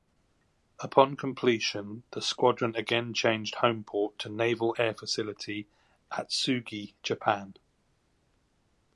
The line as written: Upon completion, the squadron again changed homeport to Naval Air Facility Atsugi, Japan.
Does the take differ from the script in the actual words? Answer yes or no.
no